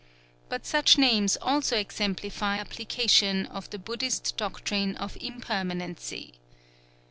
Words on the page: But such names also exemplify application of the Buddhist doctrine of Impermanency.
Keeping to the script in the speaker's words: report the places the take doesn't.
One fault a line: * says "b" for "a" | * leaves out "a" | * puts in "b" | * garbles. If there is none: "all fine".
all fine